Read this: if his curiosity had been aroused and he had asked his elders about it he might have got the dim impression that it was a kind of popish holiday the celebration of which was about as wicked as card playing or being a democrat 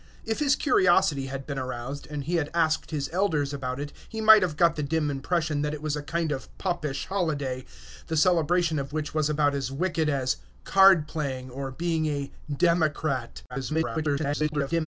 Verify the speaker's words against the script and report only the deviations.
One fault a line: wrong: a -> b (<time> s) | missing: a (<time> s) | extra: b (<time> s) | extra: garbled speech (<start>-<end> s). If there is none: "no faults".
extra: garbled speech (13.5-14.9 s)